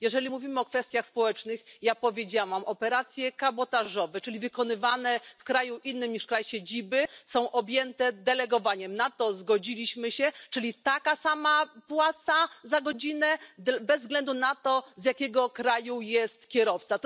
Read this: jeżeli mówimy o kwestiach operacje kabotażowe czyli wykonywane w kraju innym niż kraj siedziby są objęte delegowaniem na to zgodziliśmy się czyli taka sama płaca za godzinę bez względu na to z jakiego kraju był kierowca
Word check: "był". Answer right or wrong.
wrong